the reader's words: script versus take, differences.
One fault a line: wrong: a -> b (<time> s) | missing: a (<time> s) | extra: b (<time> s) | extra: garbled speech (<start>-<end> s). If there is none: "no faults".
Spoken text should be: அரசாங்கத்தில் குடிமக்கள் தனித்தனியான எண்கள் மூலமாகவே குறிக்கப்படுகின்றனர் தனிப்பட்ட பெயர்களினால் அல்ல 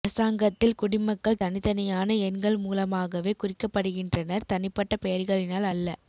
no faults